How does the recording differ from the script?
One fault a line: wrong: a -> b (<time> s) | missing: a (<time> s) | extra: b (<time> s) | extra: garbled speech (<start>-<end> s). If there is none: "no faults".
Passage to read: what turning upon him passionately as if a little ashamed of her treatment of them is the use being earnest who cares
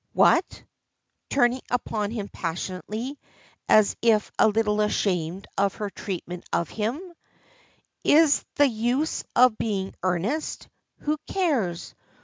wrong: them -> him (6.7 s)
extra: of (9.3 s)